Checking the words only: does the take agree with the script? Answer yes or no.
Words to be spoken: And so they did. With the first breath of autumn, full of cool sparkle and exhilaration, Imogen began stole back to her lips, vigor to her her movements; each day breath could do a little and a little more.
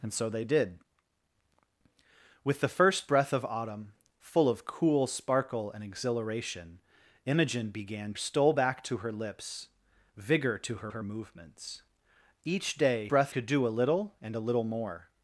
yes